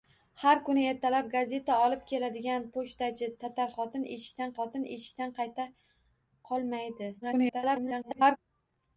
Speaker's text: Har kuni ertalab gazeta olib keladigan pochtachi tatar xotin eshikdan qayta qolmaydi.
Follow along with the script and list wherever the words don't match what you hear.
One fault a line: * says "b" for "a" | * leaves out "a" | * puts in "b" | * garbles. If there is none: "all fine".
* puts in "xotin eshikdan"
* garbles